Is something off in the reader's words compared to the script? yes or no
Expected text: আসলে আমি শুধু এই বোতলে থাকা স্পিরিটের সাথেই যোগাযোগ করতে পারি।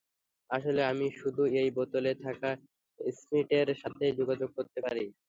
no